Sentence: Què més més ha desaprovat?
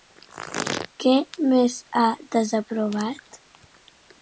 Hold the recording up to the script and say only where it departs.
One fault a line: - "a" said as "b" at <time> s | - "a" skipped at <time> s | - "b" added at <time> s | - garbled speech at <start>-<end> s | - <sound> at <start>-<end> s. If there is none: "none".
- "més" skipped at 1.8 s